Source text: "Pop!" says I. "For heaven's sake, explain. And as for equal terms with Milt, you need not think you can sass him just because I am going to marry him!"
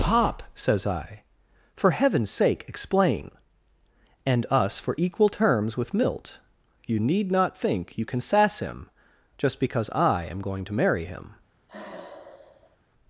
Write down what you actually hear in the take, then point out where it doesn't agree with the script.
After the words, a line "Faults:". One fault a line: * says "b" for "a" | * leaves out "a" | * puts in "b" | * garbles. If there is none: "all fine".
"Pop!" says I. "For heaven's sake, explain. And us for equal terms with Milt, you need not think you can sass him just because I am going to marry him!"
Faults:
* says "us" for "as"